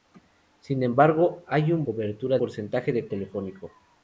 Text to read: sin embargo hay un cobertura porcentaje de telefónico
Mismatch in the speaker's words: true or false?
false